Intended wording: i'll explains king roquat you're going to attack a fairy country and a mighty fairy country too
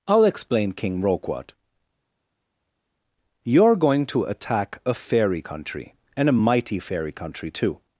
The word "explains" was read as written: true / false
false